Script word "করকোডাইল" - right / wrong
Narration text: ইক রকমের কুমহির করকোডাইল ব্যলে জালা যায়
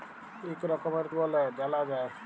wrong